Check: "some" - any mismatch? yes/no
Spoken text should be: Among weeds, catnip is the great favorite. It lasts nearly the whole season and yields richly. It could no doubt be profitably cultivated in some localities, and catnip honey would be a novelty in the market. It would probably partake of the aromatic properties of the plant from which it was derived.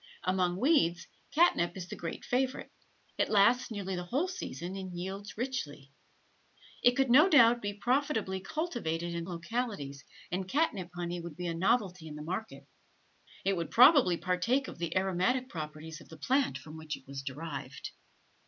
yes